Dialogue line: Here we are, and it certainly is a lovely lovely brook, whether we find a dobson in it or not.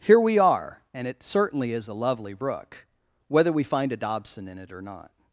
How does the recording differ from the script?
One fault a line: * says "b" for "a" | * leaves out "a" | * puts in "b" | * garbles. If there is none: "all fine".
* leaves out "lovely"